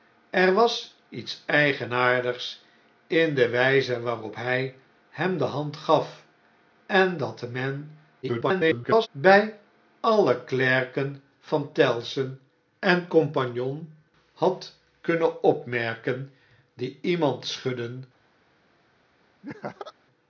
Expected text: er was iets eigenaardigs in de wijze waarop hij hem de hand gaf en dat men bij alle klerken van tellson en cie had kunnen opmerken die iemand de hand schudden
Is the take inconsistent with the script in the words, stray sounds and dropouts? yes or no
yes